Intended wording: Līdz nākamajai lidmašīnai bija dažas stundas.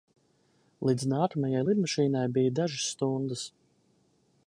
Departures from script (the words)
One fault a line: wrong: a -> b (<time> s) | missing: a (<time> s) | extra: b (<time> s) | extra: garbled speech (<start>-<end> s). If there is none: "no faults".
no faults